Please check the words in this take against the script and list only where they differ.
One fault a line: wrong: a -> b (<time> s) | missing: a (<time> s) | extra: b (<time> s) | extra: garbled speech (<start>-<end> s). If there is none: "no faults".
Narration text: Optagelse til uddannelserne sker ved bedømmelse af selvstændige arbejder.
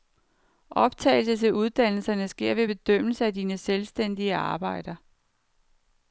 extra: dine (3.3 s)